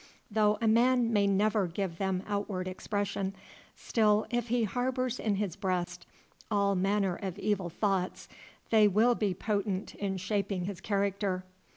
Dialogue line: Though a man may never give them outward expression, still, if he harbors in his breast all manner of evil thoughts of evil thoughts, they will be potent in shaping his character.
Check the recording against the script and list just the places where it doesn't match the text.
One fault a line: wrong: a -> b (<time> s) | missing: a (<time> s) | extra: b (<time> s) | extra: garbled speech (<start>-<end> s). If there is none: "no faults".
missing: of evil thoughts (8.3 s)